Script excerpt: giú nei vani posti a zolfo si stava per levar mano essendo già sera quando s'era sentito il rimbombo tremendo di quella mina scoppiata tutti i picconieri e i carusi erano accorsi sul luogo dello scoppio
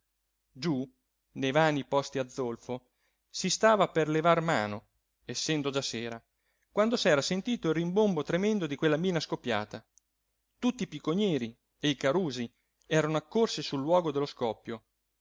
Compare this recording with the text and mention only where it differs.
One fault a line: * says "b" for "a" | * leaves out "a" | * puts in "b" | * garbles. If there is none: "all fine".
all fine